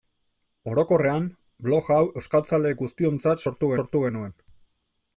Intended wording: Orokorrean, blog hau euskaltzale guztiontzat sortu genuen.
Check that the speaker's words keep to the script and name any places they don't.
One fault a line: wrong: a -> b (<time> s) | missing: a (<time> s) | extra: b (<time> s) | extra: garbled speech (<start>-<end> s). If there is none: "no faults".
extra: sortu (3.8 s)